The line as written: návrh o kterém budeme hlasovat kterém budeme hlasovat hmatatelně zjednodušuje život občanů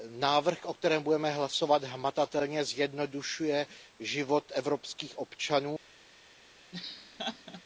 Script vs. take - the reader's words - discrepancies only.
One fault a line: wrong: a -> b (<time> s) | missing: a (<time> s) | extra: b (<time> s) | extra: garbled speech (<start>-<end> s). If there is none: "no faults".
missing: kterém budeme hlasovat (1.8 s)
extra: evropských (4.5 s)